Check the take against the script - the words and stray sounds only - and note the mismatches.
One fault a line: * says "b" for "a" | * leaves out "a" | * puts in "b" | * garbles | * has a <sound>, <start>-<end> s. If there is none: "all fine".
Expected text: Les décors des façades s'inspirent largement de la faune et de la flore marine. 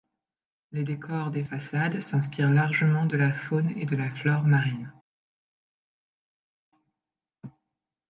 all fine